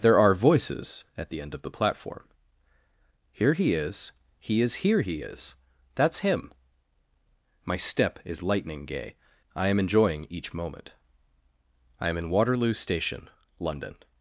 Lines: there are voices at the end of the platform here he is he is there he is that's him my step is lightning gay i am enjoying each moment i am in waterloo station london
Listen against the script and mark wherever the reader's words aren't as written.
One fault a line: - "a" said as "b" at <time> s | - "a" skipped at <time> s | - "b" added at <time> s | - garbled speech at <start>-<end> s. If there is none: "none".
- "there" said as "here" at 4.8 s